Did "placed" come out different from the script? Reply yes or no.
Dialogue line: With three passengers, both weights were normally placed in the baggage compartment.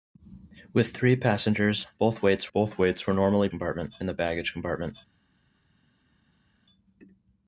yes